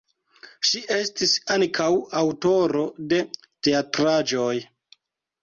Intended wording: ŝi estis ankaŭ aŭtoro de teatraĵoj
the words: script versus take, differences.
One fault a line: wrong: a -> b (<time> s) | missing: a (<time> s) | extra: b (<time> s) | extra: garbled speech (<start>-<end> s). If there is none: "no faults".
no faults